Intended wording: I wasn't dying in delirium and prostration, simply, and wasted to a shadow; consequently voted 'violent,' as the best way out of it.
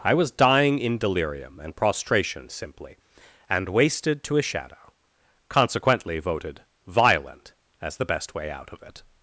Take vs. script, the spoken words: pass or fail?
fail